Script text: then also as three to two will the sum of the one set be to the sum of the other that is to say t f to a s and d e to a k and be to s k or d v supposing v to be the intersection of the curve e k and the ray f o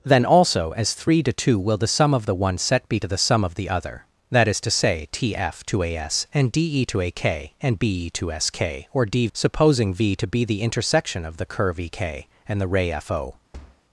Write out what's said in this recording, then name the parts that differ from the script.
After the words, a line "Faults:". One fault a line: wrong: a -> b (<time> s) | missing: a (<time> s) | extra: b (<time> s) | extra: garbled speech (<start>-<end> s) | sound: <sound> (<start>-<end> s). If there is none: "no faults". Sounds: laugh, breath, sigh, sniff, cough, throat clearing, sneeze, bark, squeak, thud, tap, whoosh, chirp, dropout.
then also as three to two will the sum of the one set be to the sum of the other that is to say t f to a s and d e to a k and be to s k or d supposing v to be the intersection of the curve e k and the ray f o
Faults:
missing: v (9.3 s)
sound: thud (13.5-13.8 s)